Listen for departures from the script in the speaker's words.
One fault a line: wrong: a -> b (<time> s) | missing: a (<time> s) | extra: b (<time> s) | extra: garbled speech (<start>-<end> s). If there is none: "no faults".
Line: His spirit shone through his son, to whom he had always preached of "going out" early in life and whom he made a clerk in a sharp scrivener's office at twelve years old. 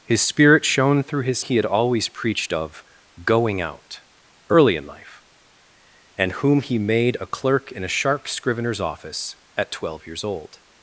missing: son to whom (1.4 s)